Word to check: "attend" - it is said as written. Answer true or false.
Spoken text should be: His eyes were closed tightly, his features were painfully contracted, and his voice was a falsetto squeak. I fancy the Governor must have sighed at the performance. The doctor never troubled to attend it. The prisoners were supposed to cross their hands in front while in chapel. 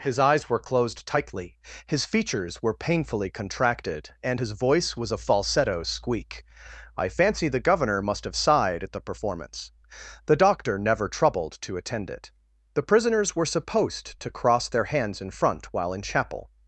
true